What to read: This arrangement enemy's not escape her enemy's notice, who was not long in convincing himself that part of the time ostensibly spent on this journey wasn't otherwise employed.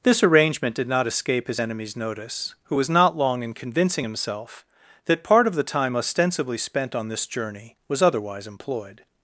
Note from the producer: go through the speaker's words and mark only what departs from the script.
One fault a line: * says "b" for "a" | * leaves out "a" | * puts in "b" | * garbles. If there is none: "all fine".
* says "did" for "enemy's"
* says "his" for "her"
* says "was" for "wasn't"